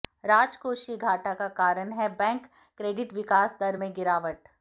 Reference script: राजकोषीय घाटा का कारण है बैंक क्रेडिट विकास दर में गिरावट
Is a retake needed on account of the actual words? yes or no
no